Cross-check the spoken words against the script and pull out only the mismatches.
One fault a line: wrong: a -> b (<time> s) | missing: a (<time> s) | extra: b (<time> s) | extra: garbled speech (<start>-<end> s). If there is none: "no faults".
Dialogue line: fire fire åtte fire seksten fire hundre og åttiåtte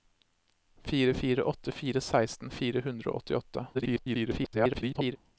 extra: garbled speech (3.7-5.2 s)